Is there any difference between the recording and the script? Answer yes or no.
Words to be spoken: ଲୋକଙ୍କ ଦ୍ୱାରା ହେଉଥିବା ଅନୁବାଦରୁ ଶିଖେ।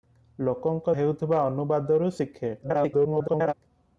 yes